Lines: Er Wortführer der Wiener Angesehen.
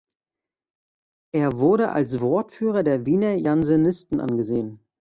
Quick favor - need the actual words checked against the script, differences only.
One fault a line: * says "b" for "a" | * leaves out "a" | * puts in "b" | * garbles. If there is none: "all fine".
* puts in "wurde als"
* puts in "Jansenisten"